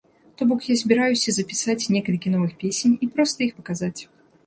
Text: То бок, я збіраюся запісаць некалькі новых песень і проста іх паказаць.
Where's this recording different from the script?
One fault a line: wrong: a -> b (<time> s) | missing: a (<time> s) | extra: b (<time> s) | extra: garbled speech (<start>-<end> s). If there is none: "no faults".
no faults